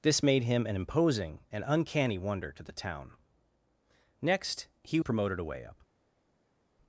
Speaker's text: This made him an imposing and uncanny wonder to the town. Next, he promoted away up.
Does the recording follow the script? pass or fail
pass